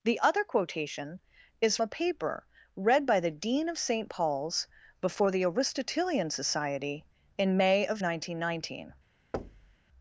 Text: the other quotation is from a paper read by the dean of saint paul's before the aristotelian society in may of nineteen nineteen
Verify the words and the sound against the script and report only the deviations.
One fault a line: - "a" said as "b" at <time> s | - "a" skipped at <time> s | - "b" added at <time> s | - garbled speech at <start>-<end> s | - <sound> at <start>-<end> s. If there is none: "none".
- "from" skipped at 1.8 s
- thud at 9.3-9.8 s